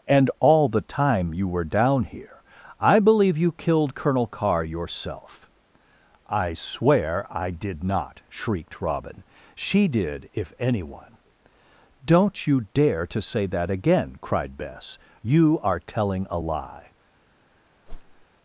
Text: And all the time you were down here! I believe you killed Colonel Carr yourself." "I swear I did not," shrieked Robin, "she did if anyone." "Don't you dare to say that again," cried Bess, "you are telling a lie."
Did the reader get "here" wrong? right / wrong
right